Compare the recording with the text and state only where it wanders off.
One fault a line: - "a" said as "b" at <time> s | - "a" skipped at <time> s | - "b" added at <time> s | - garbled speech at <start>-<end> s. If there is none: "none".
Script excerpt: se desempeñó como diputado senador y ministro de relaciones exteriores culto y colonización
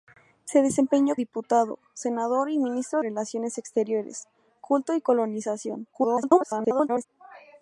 - "como" skipped at 1.1 s
- "de" skipped at 3.0 s
- garbled speech at 5.9-7.0 s